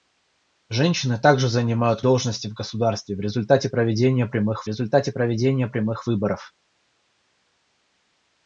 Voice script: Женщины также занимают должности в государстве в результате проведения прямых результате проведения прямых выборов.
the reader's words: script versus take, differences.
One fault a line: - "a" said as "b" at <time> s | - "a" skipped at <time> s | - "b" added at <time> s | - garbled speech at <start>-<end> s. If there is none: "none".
none